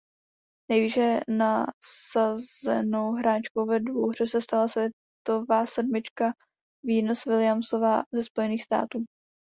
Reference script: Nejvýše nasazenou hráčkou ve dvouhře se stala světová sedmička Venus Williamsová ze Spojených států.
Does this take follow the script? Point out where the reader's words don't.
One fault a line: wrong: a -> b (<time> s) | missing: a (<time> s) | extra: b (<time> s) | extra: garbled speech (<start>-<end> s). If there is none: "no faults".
no faults